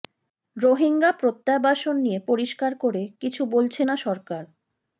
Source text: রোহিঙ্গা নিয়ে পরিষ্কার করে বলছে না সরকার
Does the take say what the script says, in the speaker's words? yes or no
no